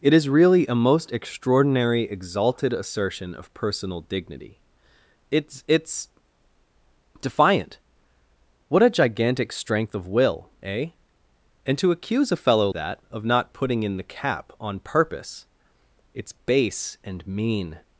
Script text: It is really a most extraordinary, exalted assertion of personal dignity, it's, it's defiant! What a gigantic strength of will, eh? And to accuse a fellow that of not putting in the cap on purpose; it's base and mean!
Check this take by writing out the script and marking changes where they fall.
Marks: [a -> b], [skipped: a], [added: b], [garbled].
It is really a most extraordinary, exalted assertion of personal dignity, it's, it's defiant! What a gigantic strength of will, eh? And to accuse a fellow that of not putting in the cap on purpose; it's base and mean!